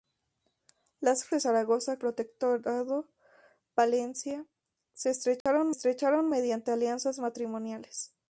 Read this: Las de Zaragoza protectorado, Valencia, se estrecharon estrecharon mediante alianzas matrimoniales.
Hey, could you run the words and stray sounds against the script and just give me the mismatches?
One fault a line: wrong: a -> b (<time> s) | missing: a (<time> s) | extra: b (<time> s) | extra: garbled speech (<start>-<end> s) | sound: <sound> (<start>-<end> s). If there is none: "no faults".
sound: dropout (5.4-5.5 s)